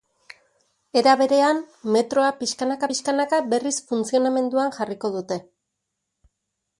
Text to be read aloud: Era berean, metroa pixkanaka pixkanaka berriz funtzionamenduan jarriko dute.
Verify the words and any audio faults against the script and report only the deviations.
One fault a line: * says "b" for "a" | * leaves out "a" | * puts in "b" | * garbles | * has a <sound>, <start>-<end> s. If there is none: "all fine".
all fine